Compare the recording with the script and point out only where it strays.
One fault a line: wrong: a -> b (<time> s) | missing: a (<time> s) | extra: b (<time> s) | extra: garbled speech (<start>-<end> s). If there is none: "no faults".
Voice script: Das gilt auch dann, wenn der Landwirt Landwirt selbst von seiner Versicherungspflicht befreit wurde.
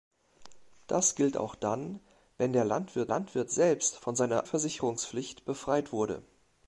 no faults